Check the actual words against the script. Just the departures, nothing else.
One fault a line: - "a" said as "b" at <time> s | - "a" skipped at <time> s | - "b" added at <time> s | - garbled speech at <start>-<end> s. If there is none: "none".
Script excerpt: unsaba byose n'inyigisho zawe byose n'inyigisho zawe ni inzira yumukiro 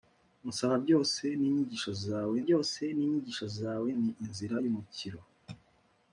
none